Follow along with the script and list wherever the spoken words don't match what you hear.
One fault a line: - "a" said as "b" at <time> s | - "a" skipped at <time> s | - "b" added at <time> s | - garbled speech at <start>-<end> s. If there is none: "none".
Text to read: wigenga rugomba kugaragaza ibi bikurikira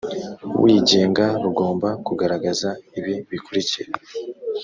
none